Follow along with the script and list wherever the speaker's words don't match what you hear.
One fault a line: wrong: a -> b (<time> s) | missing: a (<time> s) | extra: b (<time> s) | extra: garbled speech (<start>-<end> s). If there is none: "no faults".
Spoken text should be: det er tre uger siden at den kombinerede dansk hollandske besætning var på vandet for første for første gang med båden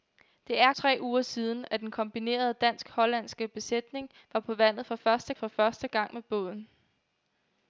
no faults